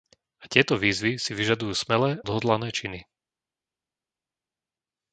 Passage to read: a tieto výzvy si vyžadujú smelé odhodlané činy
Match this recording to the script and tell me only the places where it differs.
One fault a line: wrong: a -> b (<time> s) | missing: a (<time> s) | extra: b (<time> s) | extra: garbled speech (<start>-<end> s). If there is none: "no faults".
no faults